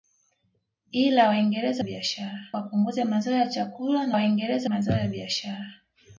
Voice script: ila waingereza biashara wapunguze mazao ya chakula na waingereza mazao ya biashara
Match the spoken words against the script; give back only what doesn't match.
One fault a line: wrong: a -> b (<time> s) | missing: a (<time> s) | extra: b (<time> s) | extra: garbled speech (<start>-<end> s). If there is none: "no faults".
no faults